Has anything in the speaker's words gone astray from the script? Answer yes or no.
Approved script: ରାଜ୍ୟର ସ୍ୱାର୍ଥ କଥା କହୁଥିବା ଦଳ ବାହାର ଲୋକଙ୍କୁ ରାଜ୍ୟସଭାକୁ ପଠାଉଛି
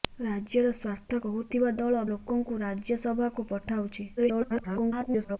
yes